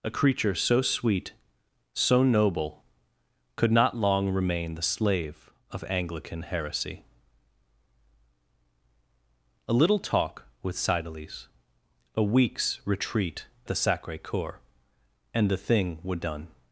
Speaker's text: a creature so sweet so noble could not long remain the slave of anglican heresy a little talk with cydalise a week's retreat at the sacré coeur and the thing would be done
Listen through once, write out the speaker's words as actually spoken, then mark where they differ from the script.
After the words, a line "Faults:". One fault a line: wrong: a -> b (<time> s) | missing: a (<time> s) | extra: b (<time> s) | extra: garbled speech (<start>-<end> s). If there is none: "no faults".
a creature so sweet so noble could not long remain the slave of anglican heresy a little talk with cydalise a week's retreat the sacré coeur and the thing would done
Faults:
missing: at (13.4 s)
missing: be (16.2 s)